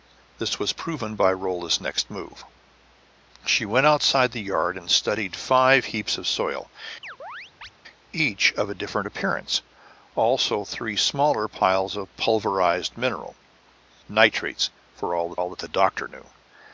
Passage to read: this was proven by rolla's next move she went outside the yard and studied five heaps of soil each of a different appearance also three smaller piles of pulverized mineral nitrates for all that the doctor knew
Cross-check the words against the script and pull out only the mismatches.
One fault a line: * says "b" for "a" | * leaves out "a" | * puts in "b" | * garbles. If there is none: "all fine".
* puts in "all that"